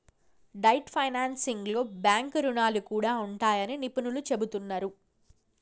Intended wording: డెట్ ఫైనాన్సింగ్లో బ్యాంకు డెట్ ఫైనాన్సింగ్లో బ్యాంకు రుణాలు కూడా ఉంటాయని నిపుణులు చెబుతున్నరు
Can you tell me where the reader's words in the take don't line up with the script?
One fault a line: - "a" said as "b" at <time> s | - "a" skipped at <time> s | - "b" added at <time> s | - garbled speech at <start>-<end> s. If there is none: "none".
- "డెట్ ఫైనాన్సింగ్లో బ్యాంకు" skipped at 2.4 s